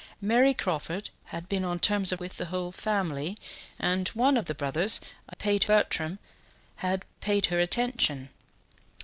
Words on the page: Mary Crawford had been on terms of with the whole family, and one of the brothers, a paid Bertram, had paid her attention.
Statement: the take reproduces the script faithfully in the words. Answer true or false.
true